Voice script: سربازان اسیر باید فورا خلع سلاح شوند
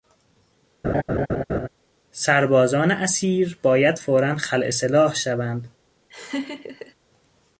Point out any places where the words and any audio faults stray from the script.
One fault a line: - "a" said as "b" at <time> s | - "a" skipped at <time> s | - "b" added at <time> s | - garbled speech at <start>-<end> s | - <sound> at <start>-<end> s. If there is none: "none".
- laugh at 0.8-1.7 s
- laugh at 6.1-6.9 s